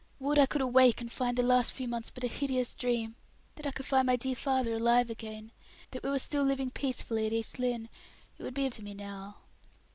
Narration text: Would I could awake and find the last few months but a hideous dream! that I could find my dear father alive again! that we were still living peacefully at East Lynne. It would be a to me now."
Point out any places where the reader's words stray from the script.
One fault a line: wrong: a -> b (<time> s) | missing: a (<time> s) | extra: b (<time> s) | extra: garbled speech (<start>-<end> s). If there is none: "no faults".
no faults